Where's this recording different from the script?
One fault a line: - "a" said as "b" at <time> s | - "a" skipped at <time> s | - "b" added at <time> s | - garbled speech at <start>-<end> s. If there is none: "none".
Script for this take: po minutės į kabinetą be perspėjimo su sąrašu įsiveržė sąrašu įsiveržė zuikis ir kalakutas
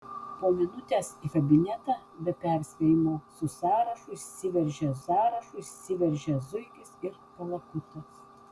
none